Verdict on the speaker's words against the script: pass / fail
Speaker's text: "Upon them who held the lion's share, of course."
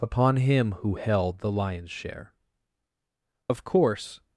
fail